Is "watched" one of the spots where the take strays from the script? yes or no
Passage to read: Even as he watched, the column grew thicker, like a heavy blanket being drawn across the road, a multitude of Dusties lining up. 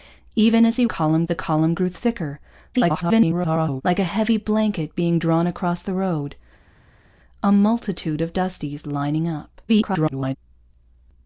yes